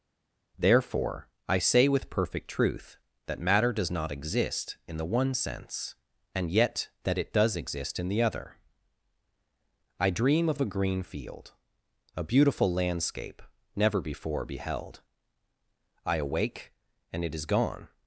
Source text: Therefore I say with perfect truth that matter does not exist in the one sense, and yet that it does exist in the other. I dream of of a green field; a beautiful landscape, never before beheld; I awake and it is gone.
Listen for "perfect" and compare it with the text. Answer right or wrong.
right